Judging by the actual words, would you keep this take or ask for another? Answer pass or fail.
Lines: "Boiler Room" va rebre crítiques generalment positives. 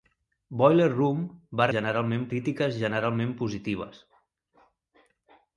fail